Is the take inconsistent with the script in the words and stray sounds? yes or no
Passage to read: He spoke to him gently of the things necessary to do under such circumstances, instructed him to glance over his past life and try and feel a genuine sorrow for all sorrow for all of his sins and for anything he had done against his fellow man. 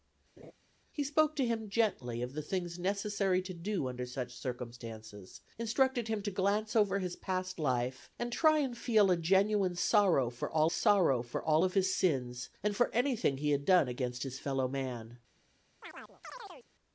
yes